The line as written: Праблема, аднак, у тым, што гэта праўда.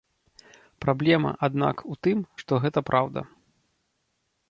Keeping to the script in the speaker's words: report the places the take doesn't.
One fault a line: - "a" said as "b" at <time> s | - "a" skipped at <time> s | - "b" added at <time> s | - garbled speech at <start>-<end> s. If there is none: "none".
none